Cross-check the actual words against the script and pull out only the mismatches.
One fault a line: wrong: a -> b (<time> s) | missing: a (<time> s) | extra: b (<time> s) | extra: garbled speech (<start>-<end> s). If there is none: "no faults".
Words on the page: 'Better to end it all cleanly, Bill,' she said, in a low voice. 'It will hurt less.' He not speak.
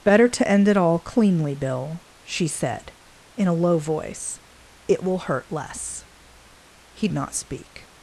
no faults